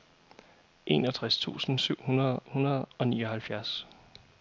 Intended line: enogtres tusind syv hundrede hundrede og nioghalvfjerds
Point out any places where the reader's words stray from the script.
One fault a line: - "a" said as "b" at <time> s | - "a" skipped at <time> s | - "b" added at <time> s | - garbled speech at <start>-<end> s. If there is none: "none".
none